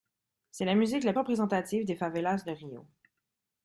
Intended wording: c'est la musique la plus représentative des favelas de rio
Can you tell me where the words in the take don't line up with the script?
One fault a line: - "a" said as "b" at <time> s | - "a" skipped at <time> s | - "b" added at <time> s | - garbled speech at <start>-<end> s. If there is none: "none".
- "plus" skipped at 1.1 s